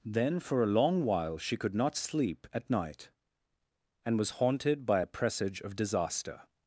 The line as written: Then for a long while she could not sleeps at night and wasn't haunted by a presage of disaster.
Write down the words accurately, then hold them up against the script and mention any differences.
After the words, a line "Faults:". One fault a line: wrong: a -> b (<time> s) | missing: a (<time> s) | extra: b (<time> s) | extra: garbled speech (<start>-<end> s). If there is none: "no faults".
Then for a long while she could not sleep at night and was haunted by a presage of disaster.
Faults:
wrong: sleeps -> sleep (1.9 s)
wrong: wasn't -> was (4.2 s)